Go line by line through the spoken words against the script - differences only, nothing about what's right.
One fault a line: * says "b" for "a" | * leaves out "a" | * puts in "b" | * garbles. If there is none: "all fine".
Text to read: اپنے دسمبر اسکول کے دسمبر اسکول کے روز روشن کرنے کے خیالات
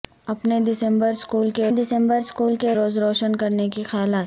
all fine